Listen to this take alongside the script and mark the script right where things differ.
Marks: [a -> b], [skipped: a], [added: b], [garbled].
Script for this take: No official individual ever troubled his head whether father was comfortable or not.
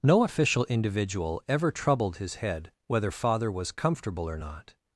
No official individual ever troubled his head whether father was comfortable or not.